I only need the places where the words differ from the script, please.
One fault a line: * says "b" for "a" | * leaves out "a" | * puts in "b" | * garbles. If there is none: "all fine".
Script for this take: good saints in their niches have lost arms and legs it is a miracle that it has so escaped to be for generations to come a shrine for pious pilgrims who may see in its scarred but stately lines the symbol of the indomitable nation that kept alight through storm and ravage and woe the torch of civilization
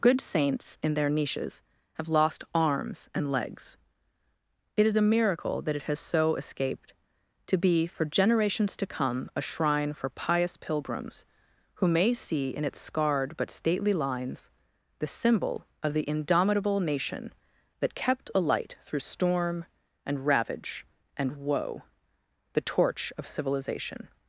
all fine